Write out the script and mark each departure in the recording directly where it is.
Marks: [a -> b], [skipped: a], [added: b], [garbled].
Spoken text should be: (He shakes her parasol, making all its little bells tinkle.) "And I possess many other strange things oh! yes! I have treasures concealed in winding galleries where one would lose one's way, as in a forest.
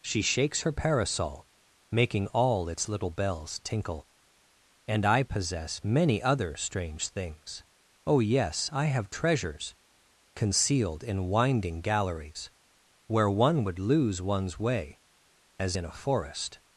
[(He -> She] shakes her parasol, making all its little bells tinkle.) "And I possess many other strange things oh! yes! I have treasures concealed in winding galleries where one would lose one's way, as in a forest.